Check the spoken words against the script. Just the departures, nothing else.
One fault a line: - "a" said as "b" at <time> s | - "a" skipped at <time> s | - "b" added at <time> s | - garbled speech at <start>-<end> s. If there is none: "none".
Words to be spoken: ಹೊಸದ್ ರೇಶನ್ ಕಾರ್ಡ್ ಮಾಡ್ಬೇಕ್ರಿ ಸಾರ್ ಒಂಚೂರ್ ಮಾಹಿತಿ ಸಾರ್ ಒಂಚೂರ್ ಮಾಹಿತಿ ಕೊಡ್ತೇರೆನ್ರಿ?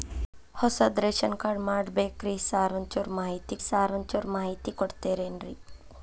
none